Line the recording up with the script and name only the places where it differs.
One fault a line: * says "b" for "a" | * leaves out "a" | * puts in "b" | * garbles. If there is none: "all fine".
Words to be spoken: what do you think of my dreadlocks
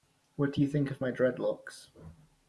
all fine